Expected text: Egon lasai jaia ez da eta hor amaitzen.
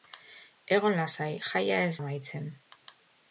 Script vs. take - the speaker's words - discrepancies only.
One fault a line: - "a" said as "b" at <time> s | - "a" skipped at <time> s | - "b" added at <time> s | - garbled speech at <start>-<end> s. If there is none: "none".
- "da eta hor" skipped at 1.9 s